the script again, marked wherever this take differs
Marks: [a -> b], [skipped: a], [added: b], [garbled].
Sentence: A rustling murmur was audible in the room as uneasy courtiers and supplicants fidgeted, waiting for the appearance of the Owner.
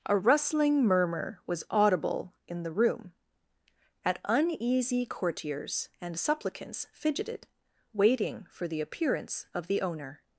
A rustling murmur was audible in the room [as -> at] uneasy courtiers and supplicants fidgeted, waiting for the appearance of the Owner.